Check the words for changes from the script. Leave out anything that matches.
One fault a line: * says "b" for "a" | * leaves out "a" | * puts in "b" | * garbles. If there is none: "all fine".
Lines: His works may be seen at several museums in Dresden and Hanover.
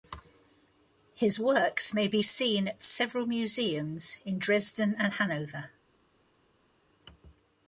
all fine